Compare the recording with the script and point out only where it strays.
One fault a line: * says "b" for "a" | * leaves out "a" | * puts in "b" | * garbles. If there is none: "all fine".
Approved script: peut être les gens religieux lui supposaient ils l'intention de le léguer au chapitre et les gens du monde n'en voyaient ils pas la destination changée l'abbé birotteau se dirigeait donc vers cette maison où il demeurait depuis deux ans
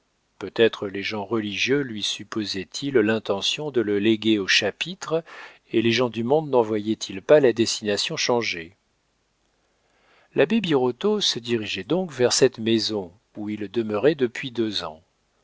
all fine